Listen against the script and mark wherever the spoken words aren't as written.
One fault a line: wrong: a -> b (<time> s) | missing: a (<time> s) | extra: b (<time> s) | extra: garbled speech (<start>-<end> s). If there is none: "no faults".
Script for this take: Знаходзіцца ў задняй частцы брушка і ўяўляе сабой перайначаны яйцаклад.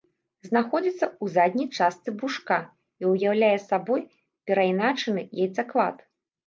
no faults